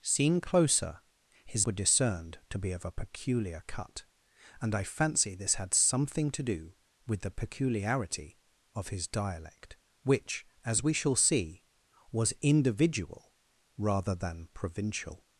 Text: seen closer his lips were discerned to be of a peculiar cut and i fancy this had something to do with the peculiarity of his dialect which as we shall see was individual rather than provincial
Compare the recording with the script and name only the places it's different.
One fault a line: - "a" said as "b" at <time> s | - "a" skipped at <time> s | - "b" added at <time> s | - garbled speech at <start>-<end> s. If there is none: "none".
- "lips" skipped at 1.7 s